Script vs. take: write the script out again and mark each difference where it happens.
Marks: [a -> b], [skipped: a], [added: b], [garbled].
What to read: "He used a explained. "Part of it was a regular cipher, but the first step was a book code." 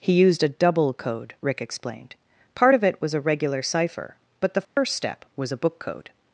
"He used a [added: double code Rick] explained. "Part of it was a regular cipher, but the first step was a book code."